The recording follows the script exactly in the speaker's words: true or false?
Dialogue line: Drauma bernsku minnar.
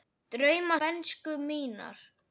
true